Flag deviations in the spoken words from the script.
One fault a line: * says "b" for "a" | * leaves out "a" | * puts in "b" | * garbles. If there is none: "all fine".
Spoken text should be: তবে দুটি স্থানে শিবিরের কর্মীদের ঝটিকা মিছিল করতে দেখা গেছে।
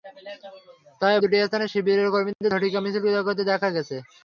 all fine